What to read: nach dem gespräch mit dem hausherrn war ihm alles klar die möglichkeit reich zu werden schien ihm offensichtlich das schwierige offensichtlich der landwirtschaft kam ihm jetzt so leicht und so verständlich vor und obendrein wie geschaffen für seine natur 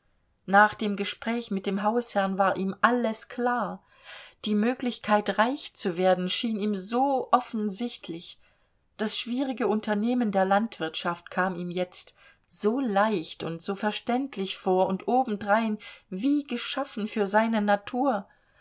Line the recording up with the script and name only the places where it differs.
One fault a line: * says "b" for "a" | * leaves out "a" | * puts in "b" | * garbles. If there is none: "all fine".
* puts in "so"
* says "unternehmen" for "offensichtlich"